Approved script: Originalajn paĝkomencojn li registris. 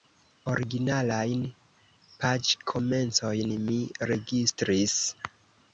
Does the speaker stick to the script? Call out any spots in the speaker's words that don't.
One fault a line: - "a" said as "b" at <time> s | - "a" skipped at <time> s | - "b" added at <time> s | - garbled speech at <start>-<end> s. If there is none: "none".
- "li" said as "mi" at 3.7 s